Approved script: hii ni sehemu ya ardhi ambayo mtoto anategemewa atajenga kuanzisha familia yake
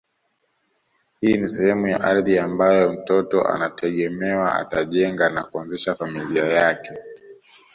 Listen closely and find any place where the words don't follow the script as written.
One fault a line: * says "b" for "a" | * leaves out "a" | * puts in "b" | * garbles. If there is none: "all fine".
* puts in "na"